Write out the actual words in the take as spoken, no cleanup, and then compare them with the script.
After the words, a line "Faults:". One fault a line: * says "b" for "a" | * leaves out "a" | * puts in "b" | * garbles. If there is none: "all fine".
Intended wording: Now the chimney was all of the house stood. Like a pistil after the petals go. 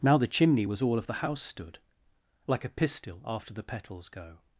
Now the chimney was all of the house stood. Like a pistil after the petals go.
Faults:
all fine